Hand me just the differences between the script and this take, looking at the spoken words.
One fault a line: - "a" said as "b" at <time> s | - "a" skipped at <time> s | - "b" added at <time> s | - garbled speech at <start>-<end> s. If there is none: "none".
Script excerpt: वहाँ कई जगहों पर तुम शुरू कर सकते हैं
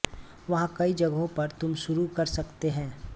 none